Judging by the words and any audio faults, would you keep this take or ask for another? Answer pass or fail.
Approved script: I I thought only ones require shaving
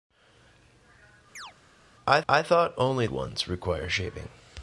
fail